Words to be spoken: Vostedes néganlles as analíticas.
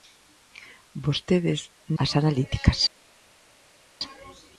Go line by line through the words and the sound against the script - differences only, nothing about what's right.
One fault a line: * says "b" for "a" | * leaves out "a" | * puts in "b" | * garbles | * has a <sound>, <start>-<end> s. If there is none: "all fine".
* leaves out "néganlles"